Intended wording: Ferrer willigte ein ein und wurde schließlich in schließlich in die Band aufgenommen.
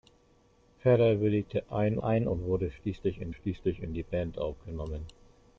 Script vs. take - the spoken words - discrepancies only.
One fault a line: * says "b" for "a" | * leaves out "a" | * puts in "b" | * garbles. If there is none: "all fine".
all fine